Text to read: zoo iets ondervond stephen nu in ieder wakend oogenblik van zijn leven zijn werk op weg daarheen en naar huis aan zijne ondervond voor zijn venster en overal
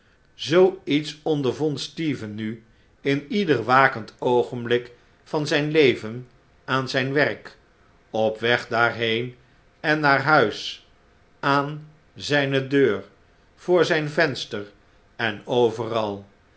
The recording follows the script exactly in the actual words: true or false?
false